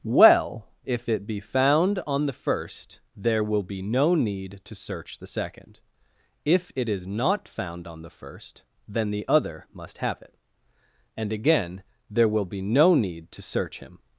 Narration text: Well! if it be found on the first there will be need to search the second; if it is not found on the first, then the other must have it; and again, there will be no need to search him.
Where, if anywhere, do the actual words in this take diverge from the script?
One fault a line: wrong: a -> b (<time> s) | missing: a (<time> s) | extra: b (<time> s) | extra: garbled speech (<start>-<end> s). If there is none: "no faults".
extra: no (3.8 s)